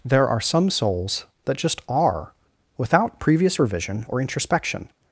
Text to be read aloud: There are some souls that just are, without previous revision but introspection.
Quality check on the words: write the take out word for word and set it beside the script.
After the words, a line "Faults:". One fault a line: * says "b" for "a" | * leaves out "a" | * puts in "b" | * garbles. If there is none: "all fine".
There are some souls that just are, without previous revision or introspection.
Faults:
* says "or" for "but"